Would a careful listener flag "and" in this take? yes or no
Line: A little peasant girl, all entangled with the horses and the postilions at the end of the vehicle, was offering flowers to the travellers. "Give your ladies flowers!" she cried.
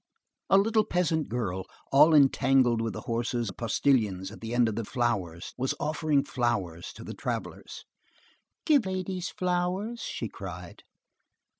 yes